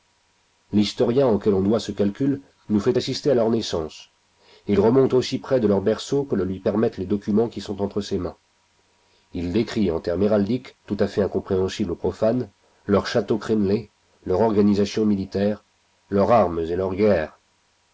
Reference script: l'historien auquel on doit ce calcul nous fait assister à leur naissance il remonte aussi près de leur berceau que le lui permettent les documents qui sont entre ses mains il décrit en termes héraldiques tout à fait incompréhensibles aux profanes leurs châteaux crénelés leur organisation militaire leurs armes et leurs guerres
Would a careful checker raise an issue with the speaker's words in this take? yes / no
no